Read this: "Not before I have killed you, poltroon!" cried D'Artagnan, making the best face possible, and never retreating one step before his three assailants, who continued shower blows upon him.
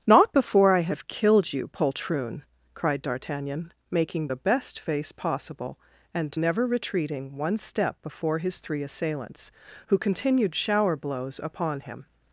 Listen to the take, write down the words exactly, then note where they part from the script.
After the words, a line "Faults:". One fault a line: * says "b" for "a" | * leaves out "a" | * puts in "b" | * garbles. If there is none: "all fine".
"Not before I have killed you, poltroon!" cried D'Artagnan, making the best face possible, and never retreating one step before his three assailants, who continued shower blows upon him.
Faults:
all fine